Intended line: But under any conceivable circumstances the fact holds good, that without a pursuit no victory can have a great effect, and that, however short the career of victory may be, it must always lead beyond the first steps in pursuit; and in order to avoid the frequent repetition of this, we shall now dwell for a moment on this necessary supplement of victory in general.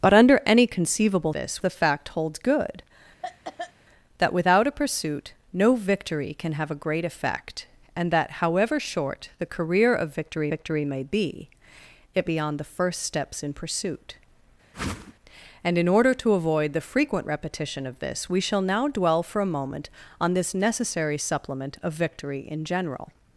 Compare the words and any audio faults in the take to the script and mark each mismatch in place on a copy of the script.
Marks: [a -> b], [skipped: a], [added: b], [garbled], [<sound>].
But under any conceivable [circumstances -> this] the fact holds good, [cough] that without a pursuit no victory can have a great effect, and that, however short the career of victory [added: victory] may be, it [skipped: must always lead] beyond the first steps in pursuit; [whoosh] and in order to avoid the frequent repetition of this, we shall now dwell for a moment on this necessary supplement of victory in general.